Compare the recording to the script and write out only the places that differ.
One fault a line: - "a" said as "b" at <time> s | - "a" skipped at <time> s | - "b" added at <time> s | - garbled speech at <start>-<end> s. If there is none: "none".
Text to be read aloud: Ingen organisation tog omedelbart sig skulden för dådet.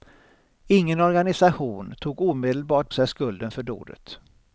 none